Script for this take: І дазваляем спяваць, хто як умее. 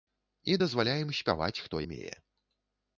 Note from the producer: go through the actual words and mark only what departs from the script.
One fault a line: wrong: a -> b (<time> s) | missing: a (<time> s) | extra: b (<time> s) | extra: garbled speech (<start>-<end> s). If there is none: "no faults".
missing: як (1.8 s)